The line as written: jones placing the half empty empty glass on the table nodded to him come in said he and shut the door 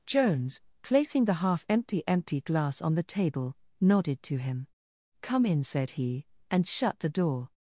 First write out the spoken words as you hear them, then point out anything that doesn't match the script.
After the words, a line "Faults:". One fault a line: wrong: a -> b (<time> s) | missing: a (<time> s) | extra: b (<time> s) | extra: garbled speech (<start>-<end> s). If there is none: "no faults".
jones placing the half empty empty glass on the table nodded to him come in said he and shut the door
Faults:
no faults